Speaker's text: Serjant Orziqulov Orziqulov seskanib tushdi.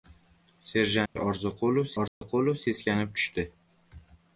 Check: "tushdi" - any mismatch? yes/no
no